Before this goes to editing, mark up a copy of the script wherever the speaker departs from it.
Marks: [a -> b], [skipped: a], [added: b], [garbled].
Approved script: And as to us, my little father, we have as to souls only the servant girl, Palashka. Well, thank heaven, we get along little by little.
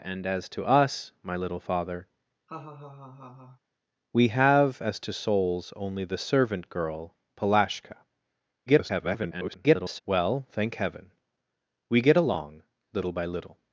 And as to us, my little father, we have as to souls only the servant girl, Palashka. [garbled] Well, thank heaven, we get along little by little.